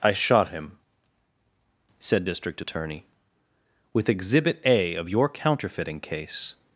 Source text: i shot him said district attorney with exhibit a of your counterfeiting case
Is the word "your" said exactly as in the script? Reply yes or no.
yes